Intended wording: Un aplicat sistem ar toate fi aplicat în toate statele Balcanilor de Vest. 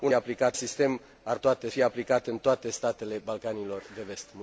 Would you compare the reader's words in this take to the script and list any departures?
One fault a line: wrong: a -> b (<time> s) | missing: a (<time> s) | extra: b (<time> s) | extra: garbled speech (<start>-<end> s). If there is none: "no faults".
no faults